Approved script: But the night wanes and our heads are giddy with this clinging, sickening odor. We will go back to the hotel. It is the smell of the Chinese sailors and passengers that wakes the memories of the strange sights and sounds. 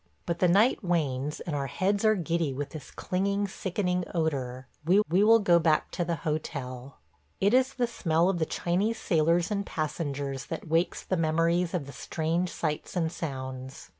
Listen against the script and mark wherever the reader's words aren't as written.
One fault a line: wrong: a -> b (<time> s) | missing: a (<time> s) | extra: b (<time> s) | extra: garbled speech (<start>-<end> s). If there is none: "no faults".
extra: we (5.1 s)